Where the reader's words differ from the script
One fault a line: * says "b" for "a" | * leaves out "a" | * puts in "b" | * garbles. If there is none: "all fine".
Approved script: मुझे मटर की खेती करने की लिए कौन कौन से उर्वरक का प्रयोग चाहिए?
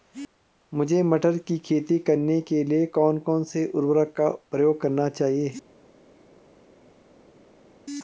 * says "के" for "की"
* puts in "करने"